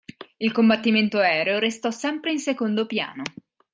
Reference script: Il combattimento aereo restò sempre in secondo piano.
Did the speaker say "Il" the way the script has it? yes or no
yes